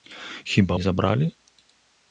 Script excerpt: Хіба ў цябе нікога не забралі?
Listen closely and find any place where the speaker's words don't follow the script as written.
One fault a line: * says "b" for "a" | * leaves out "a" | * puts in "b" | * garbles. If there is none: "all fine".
* leaves out "ў цябе нікога"